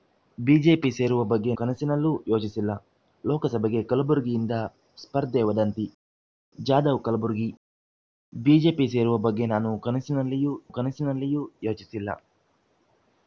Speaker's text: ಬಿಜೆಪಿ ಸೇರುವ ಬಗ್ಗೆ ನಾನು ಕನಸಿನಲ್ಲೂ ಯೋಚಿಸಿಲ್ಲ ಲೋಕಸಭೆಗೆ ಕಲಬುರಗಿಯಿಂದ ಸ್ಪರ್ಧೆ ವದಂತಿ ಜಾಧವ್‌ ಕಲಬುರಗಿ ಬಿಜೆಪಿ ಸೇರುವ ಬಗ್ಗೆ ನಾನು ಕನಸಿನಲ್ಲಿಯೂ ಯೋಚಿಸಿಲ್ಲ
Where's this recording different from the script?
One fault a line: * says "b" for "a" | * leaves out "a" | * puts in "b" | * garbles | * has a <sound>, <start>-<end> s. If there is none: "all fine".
* leaves out "ನಾನು"
* puts in "ಕನಸಿನಲ್ಲಿಯೂ"